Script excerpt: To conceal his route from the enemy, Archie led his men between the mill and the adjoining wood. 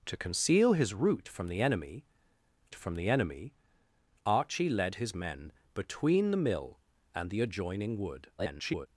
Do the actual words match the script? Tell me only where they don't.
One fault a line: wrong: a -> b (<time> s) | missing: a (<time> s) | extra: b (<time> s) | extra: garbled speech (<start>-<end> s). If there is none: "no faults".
extra: from the enemy (2.7 s)
extra: garbled speech (8.4-8.9 s)